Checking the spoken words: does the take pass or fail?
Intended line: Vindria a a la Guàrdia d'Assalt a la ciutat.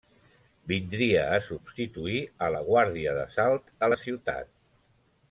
fail